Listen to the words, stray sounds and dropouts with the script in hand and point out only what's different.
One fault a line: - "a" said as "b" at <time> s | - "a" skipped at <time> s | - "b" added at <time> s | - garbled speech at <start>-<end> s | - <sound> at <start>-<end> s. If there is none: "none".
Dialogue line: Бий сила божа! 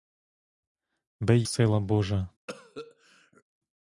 - cough at 2.5-3.4 s